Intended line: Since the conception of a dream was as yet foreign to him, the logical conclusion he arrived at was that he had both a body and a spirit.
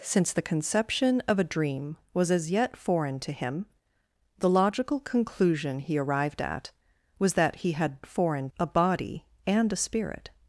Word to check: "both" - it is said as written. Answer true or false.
false